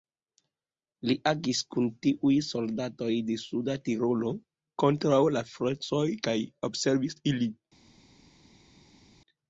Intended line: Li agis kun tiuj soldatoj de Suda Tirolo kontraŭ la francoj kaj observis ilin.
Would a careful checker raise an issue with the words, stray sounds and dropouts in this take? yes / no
no